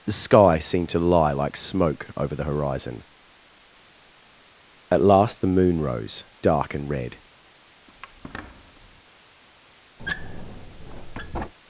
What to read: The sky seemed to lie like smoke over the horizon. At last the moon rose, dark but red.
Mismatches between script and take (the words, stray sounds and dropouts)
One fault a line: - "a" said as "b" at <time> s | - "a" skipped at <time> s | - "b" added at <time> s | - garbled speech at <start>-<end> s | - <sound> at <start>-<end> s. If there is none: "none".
- "but" said as "and" at 6.7 s
- squeak at 7.9-9.0 s
- squeak at 10.0-11.5 s